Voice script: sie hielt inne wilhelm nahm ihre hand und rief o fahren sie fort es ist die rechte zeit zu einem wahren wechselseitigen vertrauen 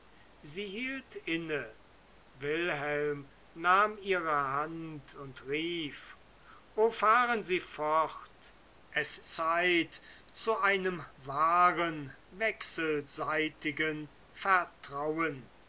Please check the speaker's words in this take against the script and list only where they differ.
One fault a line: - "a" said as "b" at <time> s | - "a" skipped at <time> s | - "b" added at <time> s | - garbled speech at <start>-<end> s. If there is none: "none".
- "ist die rechte" skipped at 9.2 s